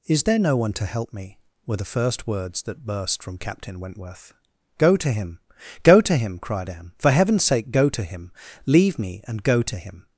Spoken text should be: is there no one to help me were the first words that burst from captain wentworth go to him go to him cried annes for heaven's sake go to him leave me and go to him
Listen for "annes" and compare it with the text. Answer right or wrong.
wrong